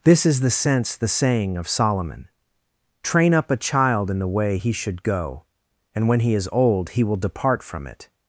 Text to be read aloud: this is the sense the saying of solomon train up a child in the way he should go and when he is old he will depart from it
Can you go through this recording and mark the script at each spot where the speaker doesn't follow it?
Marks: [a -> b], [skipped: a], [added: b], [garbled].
this is the sense the saying of solomon train up a child in the way he should go and when he is old he will depart from it